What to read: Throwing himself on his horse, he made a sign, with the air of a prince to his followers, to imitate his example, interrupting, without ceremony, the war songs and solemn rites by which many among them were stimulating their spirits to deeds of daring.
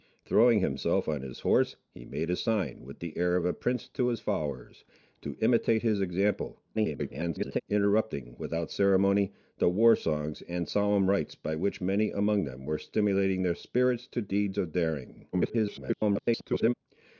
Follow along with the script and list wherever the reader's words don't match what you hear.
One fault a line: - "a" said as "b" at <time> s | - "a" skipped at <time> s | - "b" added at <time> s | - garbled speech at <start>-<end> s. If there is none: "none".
- garbled speech at 6.7-7.6 s
- garbled speech at 15.3-16.7 s